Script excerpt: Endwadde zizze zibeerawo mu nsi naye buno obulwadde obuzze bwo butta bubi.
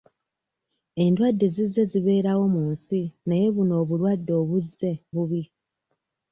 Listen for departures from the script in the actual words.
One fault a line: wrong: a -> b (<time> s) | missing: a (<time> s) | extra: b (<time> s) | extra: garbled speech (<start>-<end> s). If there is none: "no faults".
missing: bwo butta (4.9 s)